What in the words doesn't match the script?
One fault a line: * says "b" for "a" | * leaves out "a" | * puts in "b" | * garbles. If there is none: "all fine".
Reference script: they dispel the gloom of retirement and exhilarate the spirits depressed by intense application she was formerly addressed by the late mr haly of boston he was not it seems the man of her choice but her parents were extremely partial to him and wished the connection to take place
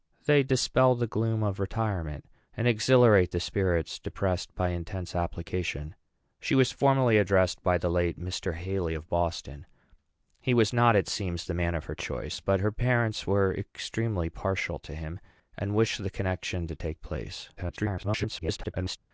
* garbles